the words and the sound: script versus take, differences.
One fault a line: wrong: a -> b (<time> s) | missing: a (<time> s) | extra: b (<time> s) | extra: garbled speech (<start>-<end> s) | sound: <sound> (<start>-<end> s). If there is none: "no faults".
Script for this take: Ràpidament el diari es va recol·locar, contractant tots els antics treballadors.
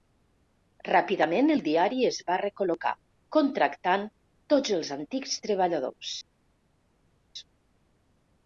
no faults